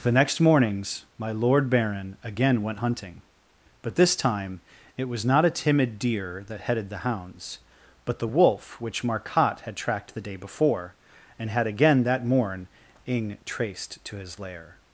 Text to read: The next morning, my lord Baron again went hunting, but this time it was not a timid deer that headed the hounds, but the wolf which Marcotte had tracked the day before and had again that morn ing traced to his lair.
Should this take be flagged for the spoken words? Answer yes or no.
yes